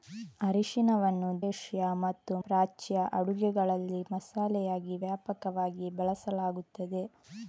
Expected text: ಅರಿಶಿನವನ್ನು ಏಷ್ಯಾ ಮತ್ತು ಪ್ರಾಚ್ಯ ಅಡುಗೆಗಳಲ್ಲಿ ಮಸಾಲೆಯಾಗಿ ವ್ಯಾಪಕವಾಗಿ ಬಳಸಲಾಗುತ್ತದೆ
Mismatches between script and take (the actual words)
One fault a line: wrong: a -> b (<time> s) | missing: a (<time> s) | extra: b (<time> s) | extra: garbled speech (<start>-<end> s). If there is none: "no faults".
no faults